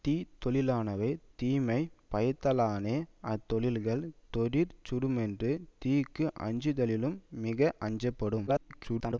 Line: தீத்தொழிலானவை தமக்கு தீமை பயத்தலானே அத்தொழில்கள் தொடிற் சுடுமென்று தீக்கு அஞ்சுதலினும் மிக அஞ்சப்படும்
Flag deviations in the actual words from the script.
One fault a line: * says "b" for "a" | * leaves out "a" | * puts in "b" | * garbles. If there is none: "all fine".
* leaves out "தமக்கு"
* garbles